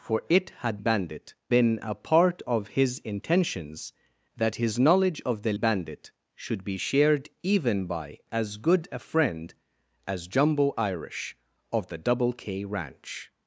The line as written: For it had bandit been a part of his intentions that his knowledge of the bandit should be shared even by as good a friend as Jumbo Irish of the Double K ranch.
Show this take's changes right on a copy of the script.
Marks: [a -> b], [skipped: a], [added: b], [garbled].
For it had bandit been a part of his intentions that his knowledge of the bandit should be shared even by as good a friend as Jumbo Irish of the Double K ranch.